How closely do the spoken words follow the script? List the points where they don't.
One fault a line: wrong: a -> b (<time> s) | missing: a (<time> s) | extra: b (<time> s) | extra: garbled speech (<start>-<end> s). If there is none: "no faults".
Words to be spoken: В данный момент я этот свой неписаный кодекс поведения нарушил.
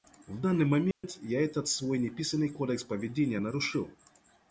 no faults